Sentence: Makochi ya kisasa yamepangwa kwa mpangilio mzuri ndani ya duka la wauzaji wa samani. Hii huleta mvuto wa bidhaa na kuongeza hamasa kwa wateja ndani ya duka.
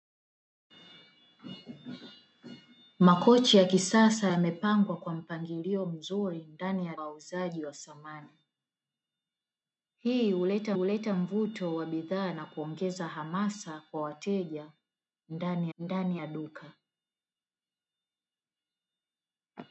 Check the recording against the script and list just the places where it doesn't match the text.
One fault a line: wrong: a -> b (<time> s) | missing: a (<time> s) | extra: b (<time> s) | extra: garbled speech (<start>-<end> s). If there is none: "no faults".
missing: duka la (7.0 s)
extra: huleta (10.7 s)
extra: ndani (15.8 s)